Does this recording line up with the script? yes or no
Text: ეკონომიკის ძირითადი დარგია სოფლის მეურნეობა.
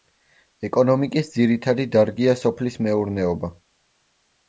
yes